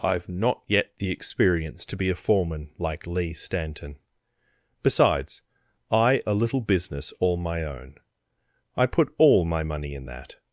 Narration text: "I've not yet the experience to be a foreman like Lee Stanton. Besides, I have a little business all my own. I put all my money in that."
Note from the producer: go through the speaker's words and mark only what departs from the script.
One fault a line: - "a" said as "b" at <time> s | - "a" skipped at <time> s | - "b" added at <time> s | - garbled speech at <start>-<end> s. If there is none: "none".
- "have" skipped at 6.2 s